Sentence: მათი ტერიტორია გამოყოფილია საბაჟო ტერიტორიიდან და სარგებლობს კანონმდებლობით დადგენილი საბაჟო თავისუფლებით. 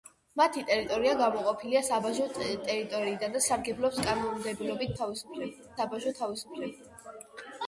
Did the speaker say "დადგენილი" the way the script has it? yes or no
no